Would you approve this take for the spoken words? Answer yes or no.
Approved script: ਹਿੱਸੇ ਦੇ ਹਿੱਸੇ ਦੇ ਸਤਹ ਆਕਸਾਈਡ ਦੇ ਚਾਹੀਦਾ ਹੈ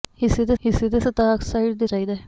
yes